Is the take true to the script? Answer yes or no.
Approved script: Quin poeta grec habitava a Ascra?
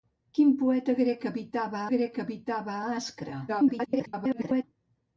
no